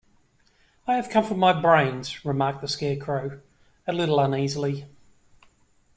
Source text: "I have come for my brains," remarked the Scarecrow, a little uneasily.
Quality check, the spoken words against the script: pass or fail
pass